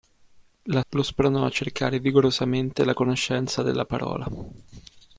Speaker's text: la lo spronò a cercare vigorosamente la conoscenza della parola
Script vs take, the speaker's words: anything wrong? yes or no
no